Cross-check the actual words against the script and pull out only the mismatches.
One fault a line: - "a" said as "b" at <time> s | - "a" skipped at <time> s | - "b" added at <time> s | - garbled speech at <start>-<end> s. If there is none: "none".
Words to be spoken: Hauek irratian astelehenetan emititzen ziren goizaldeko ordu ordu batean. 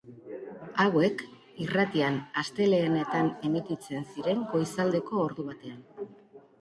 - "ordu" skipped at 5.5 s